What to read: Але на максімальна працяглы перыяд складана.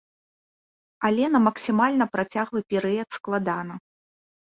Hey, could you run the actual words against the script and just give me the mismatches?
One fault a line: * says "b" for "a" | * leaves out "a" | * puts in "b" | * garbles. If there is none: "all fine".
all fine